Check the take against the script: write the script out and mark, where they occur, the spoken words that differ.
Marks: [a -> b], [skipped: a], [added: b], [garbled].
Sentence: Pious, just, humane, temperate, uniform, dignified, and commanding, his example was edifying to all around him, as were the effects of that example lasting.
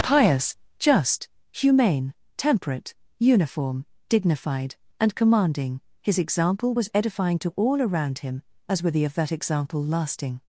Pious, just, humane, temperate, uniform, dignified, and commanding, his example was edifying to all around him, as were the [skipped: effects] of that example lasting.